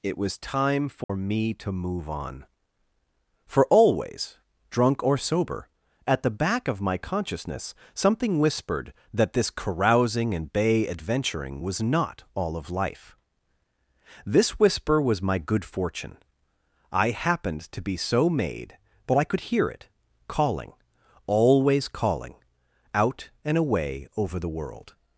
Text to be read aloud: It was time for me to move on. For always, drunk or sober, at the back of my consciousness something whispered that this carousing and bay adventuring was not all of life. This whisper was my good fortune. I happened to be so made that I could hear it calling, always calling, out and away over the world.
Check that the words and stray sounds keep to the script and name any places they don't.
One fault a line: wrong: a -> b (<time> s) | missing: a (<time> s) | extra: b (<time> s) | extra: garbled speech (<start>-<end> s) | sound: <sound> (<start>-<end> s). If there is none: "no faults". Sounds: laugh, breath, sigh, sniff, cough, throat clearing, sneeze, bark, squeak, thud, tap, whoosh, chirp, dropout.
sound: dropout (1.0-1.1 s)
wrong: that -> but (19.1 s)